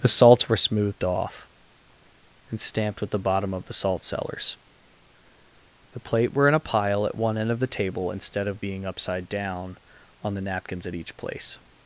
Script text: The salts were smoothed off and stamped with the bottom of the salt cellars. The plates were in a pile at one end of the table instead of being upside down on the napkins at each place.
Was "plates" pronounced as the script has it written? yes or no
no